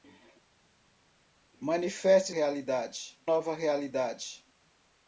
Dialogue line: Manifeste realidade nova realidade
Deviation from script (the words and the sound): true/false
false